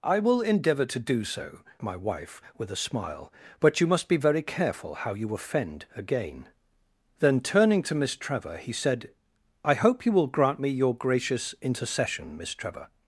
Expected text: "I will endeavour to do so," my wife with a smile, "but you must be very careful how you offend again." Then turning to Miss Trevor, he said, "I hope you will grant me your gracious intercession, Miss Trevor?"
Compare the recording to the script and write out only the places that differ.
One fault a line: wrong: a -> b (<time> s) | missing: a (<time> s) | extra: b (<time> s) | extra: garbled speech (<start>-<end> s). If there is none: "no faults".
no faults